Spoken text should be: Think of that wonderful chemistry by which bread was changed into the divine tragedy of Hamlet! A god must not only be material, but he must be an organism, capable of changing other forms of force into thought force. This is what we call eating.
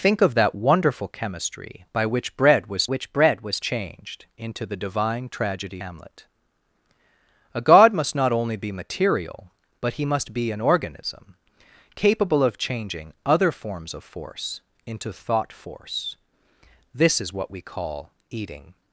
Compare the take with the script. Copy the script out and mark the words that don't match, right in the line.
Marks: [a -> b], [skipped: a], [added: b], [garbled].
Think of that wonderful chemistry by which bread was [added: which bread was] changed into the divine tragedy [skipped: of] Hamlet! A god must not only be material, but he must be an organism, capable of changing other forms of force into thought force. This is what we call eating.